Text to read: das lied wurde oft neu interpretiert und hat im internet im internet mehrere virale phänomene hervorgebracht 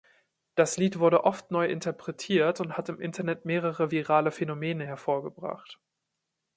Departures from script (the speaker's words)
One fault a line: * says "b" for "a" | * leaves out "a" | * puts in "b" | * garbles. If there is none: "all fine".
* leaves out "im internet"